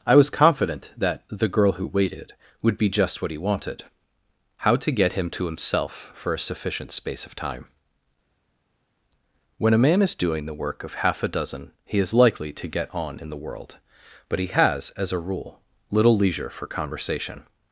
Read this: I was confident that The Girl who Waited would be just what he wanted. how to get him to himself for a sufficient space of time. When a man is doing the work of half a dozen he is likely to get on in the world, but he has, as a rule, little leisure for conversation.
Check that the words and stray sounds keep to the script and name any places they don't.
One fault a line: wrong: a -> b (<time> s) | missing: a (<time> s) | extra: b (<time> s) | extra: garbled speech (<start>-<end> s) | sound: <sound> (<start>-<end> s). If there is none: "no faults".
no faults